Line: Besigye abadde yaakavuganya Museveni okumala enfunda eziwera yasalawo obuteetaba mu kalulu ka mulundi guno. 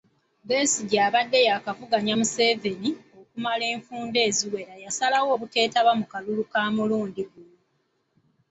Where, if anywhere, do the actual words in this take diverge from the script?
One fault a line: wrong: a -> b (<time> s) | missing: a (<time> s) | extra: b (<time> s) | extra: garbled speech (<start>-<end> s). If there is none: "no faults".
no faults